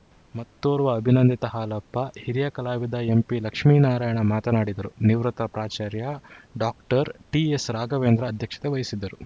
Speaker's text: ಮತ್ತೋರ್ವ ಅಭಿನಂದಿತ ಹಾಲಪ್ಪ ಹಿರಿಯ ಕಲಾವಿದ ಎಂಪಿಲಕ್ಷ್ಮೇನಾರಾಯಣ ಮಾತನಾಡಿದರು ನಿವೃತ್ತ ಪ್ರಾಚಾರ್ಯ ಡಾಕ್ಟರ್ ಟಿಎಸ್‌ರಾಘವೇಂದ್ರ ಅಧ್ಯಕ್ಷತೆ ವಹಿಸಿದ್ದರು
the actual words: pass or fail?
pass